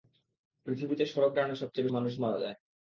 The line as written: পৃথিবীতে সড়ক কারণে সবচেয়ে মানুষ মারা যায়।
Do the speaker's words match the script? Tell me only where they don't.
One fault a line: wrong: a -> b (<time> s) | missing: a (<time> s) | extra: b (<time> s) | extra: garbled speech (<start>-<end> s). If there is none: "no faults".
no faults